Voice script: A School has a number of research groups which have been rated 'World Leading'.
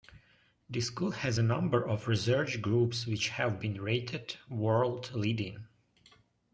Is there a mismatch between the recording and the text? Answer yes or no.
yes